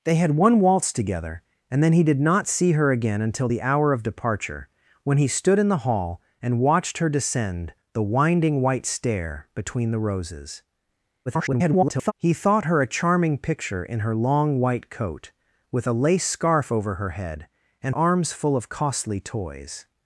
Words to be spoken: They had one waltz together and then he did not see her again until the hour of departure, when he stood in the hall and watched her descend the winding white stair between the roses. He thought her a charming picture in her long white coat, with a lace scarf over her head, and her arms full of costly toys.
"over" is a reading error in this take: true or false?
false